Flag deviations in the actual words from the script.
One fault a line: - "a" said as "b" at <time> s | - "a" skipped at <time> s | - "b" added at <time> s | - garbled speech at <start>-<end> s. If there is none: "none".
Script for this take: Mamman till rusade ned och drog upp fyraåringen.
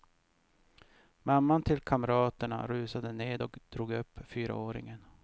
- "kamraterna" added at 1.8 s